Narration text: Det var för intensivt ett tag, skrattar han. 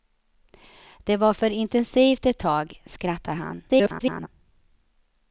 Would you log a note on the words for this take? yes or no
yes